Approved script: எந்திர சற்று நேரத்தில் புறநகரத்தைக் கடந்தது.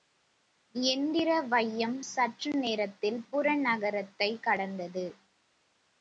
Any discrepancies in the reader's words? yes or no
yes